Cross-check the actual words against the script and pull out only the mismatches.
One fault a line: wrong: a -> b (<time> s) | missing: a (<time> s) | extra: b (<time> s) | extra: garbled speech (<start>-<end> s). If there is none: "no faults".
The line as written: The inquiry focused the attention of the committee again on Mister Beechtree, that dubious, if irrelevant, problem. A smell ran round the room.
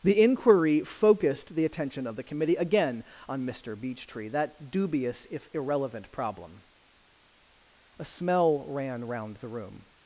no faults